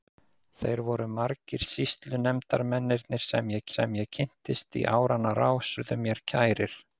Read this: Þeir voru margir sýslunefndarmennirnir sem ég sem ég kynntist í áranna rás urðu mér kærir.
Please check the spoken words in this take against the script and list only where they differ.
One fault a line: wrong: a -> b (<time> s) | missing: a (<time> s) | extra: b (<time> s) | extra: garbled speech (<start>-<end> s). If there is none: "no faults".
no faults